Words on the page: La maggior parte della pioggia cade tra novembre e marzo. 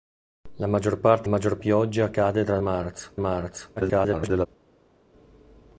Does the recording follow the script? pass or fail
fail